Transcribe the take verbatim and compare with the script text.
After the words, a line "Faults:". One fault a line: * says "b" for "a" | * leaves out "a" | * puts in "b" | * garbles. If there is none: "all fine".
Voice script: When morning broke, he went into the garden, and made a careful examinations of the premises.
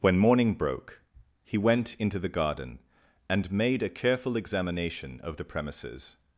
When morning broke, he went into the garden, and made a careful examination of the premises.
Faults:
* says "examination" for "examinations"